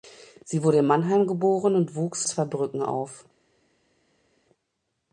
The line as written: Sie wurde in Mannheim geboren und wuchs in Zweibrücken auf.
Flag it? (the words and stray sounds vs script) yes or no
yes